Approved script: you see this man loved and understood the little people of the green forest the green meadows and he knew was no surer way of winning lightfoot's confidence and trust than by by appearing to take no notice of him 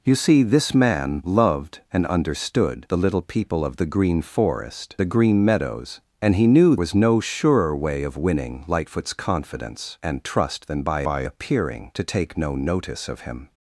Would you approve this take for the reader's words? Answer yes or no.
yes